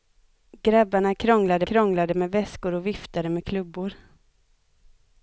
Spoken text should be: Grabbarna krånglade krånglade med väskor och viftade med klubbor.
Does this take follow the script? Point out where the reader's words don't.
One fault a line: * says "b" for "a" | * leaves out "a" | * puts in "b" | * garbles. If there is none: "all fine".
all fine